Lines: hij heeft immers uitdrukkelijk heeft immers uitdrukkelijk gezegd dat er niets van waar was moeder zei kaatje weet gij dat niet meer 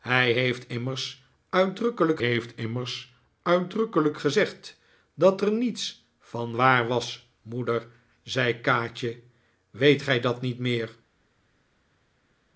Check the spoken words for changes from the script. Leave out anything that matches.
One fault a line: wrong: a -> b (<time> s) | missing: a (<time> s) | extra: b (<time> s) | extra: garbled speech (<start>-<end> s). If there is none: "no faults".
no faults